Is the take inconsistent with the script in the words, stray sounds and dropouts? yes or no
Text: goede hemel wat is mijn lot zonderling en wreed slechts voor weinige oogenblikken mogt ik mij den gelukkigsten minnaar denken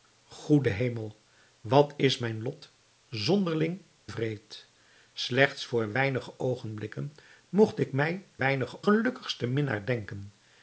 yes